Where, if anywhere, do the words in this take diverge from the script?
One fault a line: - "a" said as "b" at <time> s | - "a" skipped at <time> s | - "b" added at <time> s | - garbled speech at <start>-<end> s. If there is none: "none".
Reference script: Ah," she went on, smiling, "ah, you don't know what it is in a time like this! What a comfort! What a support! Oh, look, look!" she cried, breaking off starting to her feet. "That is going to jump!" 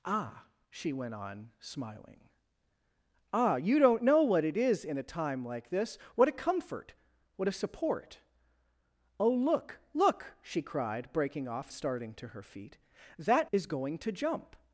none